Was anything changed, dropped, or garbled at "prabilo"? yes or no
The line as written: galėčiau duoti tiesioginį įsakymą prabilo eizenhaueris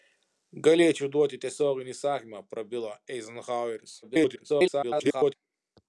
no